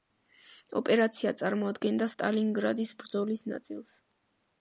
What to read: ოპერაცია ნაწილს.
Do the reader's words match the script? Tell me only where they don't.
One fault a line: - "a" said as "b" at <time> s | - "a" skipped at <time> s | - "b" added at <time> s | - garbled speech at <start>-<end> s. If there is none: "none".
- "წარმოადგენდა სტალინგრადის ბრძოლის" added at 1.4 s